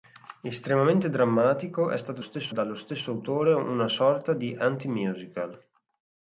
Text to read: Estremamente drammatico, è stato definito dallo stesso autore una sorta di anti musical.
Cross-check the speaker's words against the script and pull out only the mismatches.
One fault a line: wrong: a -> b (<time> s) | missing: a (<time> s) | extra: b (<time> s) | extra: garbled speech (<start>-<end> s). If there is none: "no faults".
wrong: definito -> stesso (2.2 s)